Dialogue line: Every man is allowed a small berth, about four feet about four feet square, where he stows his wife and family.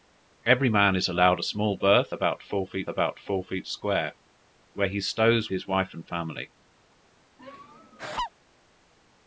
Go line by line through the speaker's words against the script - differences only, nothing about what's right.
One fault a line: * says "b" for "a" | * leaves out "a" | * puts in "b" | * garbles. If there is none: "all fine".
all fine